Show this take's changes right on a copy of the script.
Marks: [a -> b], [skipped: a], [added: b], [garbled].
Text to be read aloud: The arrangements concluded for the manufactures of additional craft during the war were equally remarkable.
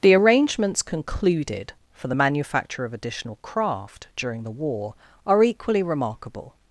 The arrangements concluded for the [manufactures -> manufacture] of additional craft during the war [were -> are] equally remarkable.